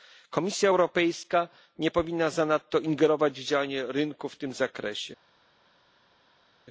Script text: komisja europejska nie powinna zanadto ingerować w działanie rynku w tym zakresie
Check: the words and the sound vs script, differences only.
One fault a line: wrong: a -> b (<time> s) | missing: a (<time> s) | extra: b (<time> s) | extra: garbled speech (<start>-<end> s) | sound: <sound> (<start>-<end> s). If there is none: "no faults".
no faults